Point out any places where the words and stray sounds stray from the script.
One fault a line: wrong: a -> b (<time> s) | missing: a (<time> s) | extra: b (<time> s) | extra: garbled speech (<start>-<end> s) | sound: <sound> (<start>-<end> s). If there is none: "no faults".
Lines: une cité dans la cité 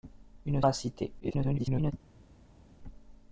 missing: cité dans (0.6 s)
extra: garbled speech (1.2-1.9 s)